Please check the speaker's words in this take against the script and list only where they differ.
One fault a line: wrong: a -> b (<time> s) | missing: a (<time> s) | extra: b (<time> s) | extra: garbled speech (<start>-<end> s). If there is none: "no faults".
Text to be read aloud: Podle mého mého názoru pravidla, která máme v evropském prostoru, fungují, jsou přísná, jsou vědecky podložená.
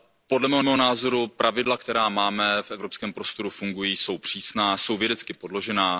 no faults